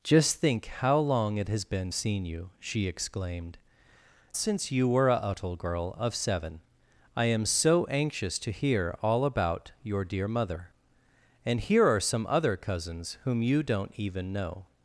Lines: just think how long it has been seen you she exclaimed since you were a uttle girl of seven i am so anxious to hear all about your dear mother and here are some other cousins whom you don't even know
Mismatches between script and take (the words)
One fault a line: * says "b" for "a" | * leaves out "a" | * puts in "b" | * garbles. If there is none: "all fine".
all fine